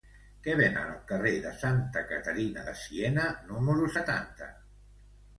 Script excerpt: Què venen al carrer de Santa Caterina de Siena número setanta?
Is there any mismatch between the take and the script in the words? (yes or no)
no